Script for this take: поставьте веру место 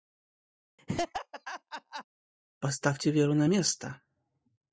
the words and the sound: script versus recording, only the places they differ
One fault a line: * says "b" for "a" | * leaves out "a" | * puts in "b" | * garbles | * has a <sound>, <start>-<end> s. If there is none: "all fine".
* has a laugh, 0.8-2.0 s
* puts in "на"